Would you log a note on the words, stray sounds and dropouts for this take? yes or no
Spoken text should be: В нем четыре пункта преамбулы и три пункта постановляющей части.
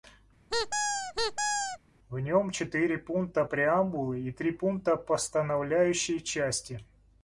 yes